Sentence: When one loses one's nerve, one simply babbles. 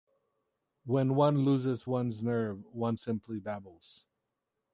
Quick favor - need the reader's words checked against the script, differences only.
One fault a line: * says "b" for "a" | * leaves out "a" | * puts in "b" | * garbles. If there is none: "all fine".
all fine